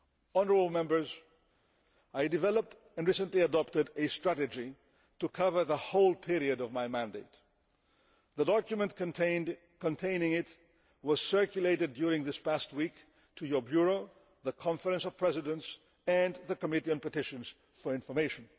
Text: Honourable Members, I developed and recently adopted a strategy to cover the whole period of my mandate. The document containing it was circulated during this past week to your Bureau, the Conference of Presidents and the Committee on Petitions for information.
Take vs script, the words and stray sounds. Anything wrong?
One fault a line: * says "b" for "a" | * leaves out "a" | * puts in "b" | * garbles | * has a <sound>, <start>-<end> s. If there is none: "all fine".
all fine